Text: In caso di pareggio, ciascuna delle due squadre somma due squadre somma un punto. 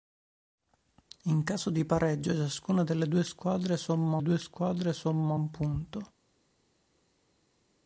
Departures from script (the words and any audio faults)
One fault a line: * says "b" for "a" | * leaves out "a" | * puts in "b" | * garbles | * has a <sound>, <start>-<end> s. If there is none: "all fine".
all fine